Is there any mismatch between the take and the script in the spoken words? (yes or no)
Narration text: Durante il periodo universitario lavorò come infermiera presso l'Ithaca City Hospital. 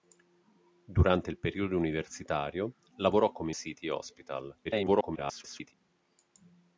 yes